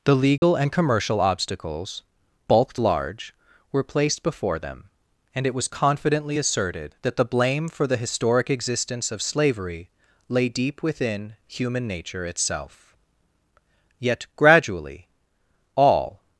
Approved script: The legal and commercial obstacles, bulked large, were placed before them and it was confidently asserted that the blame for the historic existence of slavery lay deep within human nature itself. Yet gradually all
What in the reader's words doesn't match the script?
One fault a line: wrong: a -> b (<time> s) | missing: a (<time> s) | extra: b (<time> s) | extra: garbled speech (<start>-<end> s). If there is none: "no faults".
no faults